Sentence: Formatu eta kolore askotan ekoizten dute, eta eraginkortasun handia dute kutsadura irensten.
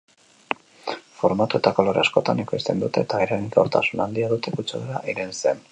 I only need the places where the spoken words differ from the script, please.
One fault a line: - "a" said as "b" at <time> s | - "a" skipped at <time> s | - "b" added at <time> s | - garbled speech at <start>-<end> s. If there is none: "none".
none